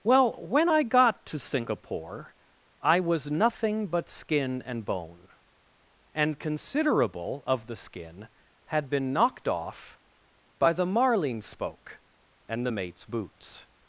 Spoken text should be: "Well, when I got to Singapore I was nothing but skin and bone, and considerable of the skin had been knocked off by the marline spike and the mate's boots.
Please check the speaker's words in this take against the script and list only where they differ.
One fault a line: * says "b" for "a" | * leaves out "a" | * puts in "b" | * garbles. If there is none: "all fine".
* says "spoke" for "spike"